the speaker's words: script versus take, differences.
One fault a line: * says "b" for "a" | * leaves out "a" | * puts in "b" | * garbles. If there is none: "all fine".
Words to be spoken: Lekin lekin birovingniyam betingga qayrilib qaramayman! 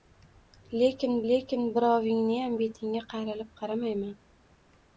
all fine